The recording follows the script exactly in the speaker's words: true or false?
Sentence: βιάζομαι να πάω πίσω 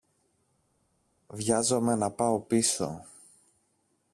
true